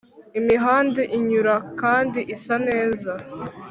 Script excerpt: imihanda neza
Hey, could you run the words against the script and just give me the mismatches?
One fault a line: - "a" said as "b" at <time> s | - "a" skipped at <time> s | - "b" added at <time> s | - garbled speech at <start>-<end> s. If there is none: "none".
- "inyura kandi isa" added at 1.2 s